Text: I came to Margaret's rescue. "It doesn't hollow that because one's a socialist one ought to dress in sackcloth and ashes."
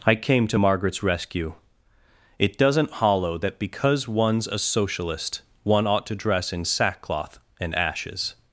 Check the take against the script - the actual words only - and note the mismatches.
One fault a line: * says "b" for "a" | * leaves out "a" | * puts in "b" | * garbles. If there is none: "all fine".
all fine